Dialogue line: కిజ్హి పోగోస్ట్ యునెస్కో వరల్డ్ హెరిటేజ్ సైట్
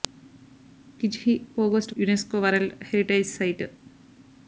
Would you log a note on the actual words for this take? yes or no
no